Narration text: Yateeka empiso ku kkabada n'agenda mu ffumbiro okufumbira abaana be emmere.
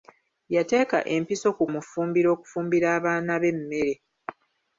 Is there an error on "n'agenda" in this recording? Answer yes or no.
yes